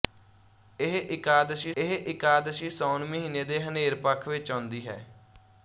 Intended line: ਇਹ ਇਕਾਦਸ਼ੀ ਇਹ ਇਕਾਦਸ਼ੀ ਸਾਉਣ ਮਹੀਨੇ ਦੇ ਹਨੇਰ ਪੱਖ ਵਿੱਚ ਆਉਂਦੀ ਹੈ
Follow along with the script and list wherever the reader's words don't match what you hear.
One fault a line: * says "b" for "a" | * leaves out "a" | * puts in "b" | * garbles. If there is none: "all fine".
all fine